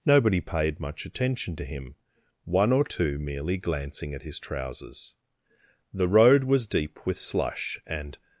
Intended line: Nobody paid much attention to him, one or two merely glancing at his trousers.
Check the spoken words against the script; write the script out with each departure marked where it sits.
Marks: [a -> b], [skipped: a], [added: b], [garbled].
Nobody paid much attention to him, one or two merely glancing at his trousers. [added: The road was deep with slush and]